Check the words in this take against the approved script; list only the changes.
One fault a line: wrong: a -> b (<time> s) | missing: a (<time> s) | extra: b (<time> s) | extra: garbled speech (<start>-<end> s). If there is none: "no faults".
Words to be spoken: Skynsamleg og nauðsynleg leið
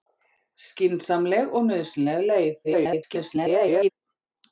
extra: garbled speech (2.6-3.9 s)